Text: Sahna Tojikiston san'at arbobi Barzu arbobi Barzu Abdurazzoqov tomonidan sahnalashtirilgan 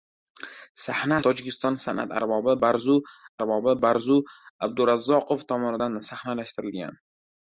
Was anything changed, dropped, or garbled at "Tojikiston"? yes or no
no